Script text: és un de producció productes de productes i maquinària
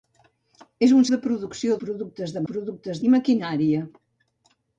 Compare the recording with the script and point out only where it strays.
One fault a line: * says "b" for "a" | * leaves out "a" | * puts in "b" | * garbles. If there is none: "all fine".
all fine